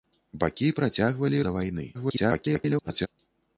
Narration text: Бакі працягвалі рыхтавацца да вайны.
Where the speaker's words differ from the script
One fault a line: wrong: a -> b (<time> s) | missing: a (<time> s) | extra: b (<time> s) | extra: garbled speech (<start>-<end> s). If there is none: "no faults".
missing: рыхтавацца (1.4 s)
extra: garbled speech (1.9-3.1 s)